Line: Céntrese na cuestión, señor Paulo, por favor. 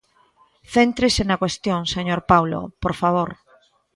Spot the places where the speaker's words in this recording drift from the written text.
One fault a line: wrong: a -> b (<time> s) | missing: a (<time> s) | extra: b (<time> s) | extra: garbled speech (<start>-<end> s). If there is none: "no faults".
no faults